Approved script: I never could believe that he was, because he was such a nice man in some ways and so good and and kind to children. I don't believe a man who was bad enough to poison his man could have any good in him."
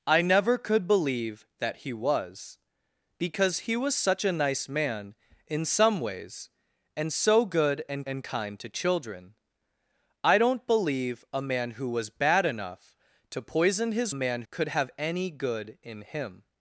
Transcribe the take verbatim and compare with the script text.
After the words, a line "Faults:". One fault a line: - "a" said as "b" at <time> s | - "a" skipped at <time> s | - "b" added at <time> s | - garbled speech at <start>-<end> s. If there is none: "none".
I never could believe that he was, because he was such a nice man in some ways and so good and and kind to children. I don't believe a man who was bad enough to poison his man could have any good in him."
Faults:
none